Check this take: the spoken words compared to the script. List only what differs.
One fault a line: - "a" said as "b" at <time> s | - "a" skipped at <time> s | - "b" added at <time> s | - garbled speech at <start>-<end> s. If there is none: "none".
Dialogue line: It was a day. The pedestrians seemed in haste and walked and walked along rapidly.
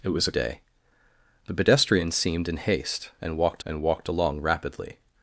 none